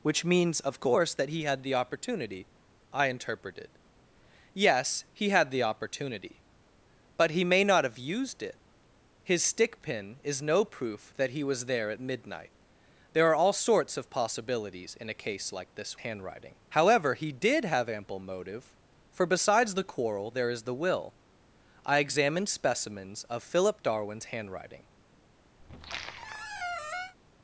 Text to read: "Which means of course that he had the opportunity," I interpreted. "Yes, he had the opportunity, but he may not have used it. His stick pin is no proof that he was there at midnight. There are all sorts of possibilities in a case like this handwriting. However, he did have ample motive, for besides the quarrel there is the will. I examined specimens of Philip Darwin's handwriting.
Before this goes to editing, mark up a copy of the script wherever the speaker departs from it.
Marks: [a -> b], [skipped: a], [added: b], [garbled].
"Which means of course that he had the opportunity," I interpreted. "Yes, he had the opportunity, but he may not have used it. His stick pin is no proof that he was there at midnight. There are all sorts of possibilities in a case like this handwriting. However, he did have ample motive, for besides the quarrel there is the will. I examined specimens of Philip Darwin's handwriting.